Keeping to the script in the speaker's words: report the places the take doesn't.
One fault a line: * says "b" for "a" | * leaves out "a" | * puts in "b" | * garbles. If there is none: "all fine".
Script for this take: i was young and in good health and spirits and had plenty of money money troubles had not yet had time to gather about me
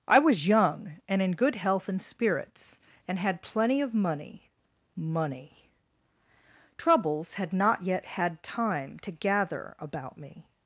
all fine